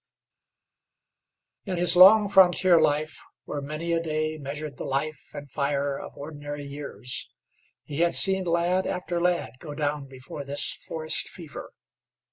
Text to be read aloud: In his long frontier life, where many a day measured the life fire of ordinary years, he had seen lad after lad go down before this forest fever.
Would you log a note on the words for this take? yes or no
yes